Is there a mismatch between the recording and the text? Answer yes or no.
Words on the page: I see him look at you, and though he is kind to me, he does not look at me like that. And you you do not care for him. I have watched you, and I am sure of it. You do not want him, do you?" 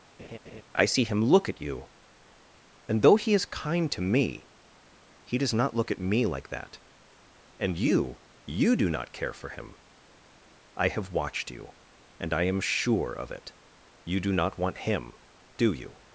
no